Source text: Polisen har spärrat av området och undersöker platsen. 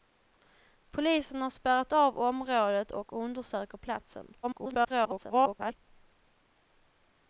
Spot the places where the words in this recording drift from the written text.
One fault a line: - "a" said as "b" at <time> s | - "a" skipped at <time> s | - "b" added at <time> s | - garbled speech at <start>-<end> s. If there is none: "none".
- garbled speech at 4.4-5.8 s